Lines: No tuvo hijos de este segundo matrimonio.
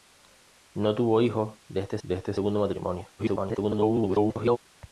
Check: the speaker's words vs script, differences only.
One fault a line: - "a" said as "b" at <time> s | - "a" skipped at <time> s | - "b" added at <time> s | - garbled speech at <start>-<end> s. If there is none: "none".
- "de este" added at 2.0 s
- garbled speech at 3.2-4.6 s